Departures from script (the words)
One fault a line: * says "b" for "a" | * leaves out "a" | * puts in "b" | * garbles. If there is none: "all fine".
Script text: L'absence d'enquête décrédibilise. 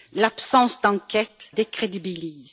all fine